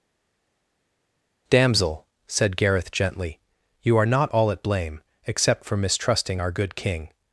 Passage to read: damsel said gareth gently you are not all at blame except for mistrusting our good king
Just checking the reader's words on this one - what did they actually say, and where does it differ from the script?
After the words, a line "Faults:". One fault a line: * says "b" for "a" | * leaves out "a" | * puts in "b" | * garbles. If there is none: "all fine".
damsel said gareth gently you are not all at blame except for mistrusting our good king
Faults:
all fine